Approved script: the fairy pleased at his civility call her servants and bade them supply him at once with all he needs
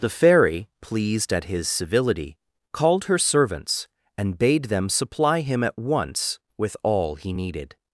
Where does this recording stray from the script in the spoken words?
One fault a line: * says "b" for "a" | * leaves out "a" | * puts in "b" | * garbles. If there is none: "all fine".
* says "called" for "call"
* says "needed" for "needs"